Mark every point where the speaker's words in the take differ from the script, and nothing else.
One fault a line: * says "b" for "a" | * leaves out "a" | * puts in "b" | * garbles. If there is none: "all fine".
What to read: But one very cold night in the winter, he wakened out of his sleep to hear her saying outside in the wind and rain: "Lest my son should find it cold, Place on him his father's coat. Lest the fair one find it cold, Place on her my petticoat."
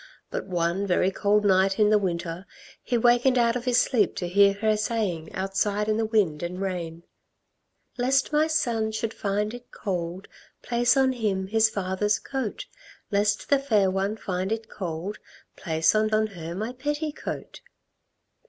* puts in "on"